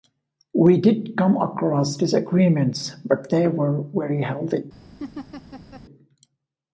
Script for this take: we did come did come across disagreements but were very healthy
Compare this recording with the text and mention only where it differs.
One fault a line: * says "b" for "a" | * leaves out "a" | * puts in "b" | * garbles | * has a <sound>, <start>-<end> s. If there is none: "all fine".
* leaves out "did come"
* puts in "they"
* has a laugh, 5.0-5.8 s